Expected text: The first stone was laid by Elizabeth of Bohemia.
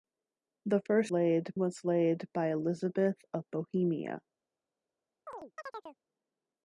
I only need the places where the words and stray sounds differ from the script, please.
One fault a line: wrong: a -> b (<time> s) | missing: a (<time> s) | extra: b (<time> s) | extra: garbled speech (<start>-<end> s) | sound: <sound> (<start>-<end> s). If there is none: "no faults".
wrong: stone -> laid (1.1 s)
sound: chirp (5.3-6.0 s)